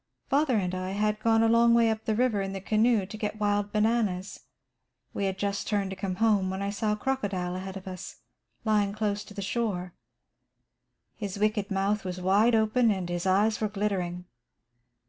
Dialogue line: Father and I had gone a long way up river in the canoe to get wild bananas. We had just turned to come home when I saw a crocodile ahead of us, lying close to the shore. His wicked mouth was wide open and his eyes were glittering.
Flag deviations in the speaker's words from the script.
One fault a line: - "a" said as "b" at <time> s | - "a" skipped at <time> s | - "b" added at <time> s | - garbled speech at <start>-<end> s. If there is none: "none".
- "the" added at 2.0 s